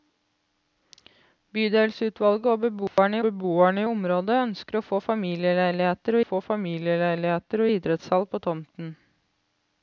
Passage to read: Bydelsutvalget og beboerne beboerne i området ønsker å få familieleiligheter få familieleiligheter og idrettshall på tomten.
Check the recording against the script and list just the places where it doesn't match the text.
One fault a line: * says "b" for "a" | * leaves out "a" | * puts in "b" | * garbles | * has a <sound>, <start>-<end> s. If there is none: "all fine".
* has a dropout, 2.9-3.0 s